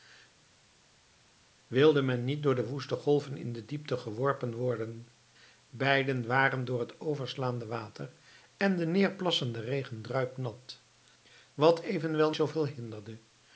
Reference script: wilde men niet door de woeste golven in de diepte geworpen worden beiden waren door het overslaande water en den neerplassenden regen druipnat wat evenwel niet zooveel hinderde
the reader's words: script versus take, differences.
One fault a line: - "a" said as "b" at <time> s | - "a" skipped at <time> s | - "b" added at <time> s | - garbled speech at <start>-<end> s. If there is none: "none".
- "niet" skipped at 12.3 s